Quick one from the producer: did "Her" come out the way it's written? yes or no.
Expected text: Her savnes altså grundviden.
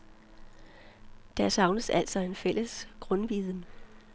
no